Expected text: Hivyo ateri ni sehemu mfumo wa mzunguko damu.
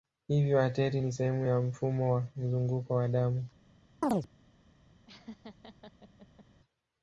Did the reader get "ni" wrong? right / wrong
right